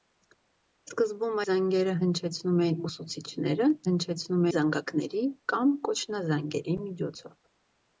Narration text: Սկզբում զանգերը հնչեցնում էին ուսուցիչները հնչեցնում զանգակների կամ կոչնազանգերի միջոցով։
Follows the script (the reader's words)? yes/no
yes